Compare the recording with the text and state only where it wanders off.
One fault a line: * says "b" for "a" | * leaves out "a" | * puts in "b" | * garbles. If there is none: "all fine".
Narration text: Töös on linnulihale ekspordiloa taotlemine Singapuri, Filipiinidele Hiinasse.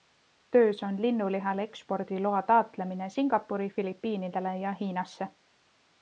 * puts in "ja"